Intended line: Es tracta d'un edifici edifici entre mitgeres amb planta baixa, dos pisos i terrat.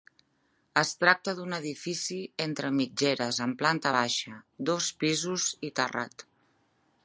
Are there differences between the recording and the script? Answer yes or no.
yes